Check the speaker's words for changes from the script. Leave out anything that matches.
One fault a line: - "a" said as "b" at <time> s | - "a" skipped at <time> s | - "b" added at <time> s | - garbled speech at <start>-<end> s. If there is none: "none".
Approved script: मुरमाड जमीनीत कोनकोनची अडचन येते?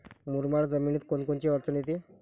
none